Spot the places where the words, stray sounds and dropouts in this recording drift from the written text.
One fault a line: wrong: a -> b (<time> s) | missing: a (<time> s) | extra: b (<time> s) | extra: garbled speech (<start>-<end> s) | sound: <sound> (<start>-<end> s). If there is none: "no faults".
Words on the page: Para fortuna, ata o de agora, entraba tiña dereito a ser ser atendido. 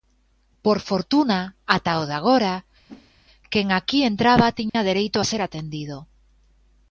wrong: Para -> Por (0.7 s)
sound: whoosh (2.9-3.1 s)
extra: quen aquí (3.5 s)
sound: dropout (4.7-4.7 s)
missing: ser (5.4 s)